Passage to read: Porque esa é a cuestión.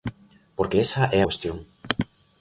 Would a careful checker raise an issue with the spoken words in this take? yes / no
yes